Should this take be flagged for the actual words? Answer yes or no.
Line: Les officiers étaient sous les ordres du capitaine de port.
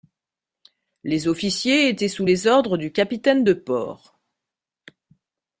no